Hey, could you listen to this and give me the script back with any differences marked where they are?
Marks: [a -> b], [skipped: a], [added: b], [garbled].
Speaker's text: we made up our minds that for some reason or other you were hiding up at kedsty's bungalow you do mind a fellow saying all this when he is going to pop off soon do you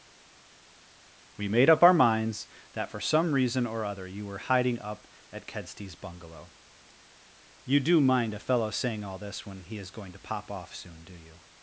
we made up our minds that for some reason or other you were hiding up at kedsty's bungalow you do mind a fellow saying all this when he is going to pop off soon do you